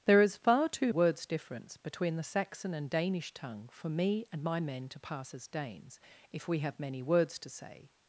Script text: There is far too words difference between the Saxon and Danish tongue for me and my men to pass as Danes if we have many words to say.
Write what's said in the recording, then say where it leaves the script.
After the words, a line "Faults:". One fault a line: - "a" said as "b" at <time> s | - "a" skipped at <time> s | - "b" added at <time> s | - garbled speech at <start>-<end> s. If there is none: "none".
There is far too words difference between the Saxon and Danish tongue for me and my men to pass as Danes if we have many words to say.
Faults:
none